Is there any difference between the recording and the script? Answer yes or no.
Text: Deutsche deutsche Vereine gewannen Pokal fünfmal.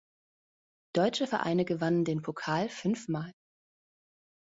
yes